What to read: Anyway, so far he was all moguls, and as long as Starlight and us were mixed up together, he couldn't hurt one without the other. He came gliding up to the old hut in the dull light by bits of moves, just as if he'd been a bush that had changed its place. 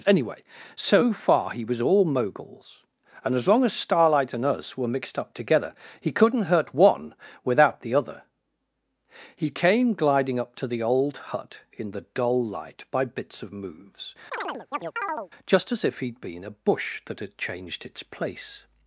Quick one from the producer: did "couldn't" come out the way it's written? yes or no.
yes